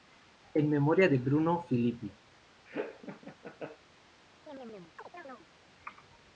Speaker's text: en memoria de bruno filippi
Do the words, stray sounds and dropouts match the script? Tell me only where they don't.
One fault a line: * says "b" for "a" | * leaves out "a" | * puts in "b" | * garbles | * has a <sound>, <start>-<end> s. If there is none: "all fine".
* has a laugh, 2.7-3.8 s
* has a chirp, 4.5-5.5 s